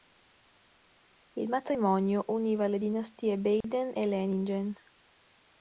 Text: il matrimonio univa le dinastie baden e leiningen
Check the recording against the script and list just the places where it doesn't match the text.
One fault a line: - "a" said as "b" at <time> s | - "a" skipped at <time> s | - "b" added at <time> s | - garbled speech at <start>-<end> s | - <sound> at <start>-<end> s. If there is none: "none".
- dropout at 3.6-3.6 s